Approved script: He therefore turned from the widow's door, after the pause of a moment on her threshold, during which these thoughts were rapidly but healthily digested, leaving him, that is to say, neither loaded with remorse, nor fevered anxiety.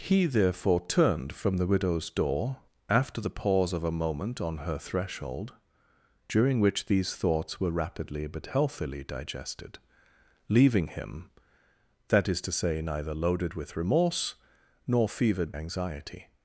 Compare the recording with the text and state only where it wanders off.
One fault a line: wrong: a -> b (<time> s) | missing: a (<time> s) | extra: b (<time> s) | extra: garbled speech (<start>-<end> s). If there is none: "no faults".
no faults